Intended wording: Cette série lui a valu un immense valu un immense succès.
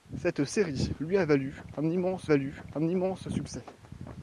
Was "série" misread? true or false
false